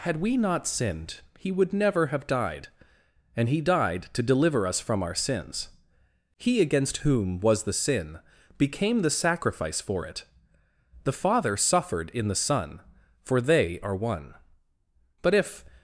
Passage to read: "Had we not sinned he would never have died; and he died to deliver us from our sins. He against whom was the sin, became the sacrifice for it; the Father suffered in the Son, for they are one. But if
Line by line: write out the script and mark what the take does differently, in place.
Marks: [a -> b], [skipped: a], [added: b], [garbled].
"Had we not sinned he would never have died; and he died to deliver us from our sins. He against whom was the sin, became the sacrifice for it; the Father suffered in the Son, for they are one. But if